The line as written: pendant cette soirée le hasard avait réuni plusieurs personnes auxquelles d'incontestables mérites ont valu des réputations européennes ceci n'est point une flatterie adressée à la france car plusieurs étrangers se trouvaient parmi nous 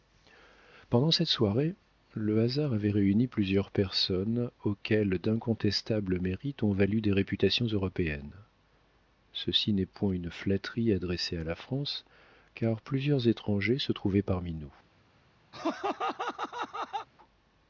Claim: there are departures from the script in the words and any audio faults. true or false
true